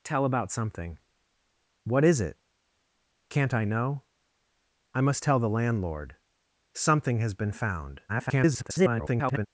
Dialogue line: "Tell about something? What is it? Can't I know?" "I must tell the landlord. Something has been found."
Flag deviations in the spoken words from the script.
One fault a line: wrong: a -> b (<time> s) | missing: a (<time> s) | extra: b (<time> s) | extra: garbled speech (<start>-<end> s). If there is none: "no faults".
extra: garbled speech (8.1-9.5 s)